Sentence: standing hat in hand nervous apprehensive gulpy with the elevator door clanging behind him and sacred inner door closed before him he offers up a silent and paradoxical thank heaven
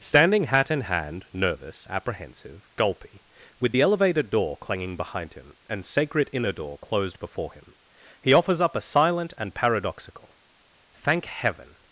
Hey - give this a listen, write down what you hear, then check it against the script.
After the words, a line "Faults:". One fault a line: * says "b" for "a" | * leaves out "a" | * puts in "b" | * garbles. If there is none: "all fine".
standing hat in hand nervous apprehensive gulpy with the elevator door clanging behind him and sacred inner door closed before him he offers up a silent and paradoxical thank heaven
Faults:
all fine